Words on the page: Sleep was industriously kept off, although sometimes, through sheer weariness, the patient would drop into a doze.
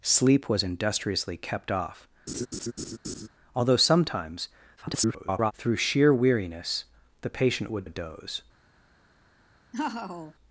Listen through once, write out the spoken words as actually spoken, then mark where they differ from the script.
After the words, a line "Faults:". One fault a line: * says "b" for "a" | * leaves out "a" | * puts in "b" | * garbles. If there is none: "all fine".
Sleep was industriously kept off, although sometimes, [garbled] through sheer weariness, the patient would a doze.
Faults:
* garbles
* leaves out "drop into"